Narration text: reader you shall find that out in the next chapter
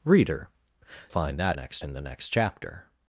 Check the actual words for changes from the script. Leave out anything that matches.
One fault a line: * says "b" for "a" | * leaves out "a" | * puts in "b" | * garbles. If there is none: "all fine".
* leaves out "you shall"
* says "next" for "out"